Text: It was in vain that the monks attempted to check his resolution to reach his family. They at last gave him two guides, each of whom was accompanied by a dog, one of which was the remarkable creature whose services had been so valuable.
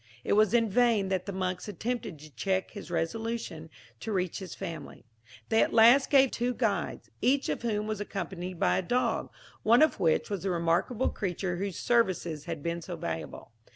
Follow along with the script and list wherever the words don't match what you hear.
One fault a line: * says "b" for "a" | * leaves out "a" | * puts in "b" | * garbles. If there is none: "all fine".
* leaves out "him"